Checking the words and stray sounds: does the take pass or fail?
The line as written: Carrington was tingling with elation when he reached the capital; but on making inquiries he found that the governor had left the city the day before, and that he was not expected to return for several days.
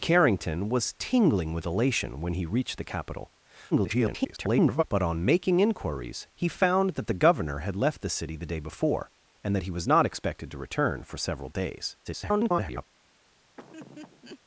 fail